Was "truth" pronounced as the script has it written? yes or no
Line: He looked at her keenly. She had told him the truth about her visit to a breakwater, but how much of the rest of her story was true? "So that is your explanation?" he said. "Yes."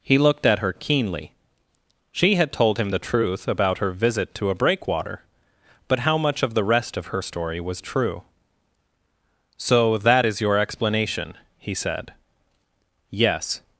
yes